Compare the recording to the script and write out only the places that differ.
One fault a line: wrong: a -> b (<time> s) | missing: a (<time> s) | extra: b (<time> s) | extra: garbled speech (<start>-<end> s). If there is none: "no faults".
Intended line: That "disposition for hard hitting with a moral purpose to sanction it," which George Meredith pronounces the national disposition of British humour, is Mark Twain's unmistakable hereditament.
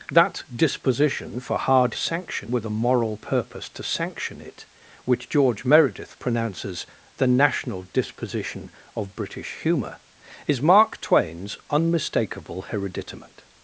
wrong: hitting -> sanction (1.9 s)